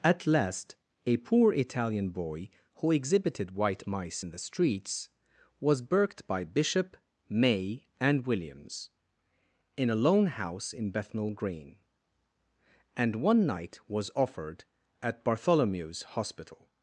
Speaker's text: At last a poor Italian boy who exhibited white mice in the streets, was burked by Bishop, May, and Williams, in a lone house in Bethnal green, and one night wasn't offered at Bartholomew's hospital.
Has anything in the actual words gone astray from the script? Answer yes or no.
yes